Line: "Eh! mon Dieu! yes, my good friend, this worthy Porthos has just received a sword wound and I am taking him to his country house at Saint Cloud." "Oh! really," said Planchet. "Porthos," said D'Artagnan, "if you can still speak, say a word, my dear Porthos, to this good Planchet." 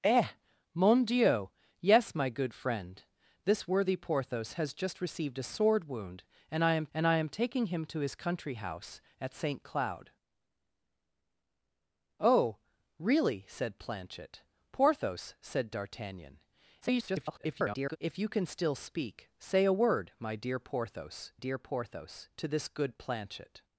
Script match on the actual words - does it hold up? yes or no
no